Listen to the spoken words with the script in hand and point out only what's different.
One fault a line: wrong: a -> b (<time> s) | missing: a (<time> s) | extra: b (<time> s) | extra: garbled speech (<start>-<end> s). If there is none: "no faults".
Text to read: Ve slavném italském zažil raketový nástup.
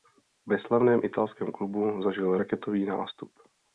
extra: klubu (1.5 s)